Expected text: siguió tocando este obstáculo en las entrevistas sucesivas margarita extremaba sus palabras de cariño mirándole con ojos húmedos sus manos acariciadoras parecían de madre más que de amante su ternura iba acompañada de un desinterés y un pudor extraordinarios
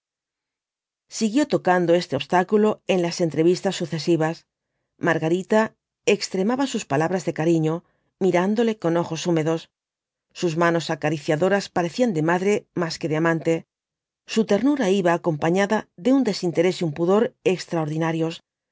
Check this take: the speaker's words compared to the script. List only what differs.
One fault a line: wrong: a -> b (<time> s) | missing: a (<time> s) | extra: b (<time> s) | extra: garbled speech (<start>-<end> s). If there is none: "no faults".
no faults